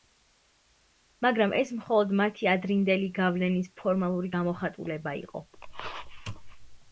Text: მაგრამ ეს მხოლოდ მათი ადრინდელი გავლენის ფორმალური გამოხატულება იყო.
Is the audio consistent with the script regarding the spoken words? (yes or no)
yes